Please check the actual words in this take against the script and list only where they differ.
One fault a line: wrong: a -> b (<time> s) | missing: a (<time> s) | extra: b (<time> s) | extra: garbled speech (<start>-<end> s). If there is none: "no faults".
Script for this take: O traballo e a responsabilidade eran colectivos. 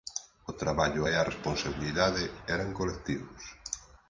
no faults